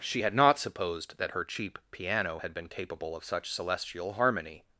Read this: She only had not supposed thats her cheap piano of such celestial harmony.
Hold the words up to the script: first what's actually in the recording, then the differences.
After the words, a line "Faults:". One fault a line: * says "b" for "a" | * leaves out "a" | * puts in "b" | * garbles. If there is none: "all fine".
She had not supposed that her cheap piano had been capable of such celestial harmony.
Faults:
* leaves out "only"
* says "that" for "thats"
* puts in "had been capable"